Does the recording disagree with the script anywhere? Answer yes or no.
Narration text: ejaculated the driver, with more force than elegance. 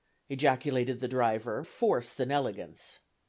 yes